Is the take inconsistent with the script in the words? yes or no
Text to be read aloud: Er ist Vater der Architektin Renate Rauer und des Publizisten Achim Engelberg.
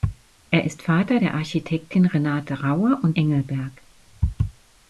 yes